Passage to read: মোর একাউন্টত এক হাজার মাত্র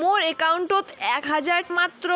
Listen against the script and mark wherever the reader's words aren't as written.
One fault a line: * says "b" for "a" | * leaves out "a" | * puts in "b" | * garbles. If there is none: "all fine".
all fine